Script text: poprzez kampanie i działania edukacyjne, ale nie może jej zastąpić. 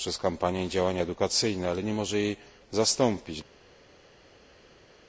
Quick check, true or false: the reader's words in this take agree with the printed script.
true